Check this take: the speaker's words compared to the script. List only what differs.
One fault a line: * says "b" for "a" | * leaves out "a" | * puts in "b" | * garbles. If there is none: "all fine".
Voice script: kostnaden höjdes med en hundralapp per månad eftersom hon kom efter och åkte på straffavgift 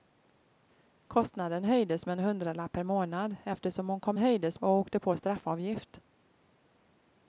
* says "höjdes" for "efter"